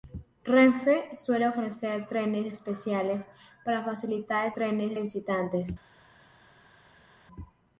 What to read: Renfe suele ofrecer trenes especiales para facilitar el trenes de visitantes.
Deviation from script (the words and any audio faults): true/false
false